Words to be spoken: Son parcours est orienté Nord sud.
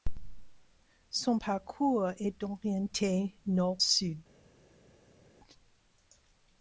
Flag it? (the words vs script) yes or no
no